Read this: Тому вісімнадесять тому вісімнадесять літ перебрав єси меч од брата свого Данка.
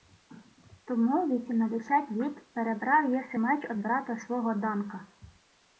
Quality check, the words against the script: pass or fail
fail